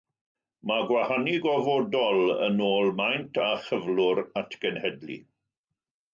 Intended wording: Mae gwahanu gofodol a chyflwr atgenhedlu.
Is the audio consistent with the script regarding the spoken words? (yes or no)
no